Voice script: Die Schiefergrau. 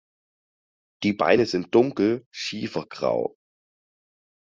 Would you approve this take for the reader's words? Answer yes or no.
no